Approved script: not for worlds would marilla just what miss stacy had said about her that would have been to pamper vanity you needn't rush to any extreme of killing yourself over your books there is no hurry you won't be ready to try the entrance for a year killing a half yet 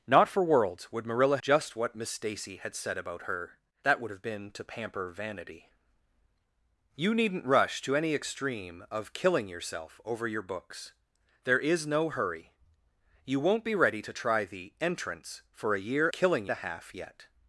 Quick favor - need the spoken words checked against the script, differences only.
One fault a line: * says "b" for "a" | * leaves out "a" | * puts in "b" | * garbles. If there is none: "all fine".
all fine